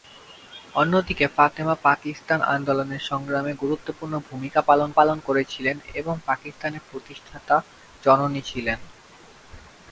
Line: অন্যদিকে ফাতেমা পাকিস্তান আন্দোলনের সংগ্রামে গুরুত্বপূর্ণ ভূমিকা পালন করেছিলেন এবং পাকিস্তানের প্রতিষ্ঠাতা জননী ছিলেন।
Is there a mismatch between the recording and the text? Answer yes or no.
yes